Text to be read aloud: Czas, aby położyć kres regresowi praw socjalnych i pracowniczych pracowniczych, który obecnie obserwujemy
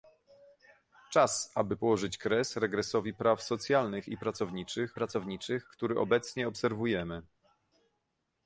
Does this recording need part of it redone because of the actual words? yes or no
no